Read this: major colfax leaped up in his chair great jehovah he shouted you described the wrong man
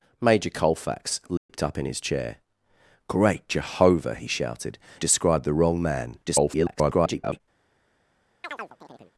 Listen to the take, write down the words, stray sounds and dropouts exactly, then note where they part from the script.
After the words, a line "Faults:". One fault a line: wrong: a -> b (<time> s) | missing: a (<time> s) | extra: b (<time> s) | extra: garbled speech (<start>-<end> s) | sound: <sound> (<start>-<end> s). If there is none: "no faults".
major colfax leaped up in his chair great jehovah he shouted described the wrong man [garbled]
Faults:
sound: dropout (1.4-1.5 s)
missing: you (4.8 s)
extra: garbled speech (6.3-7.4 s)
sound: chirp (8.4-9.1 s)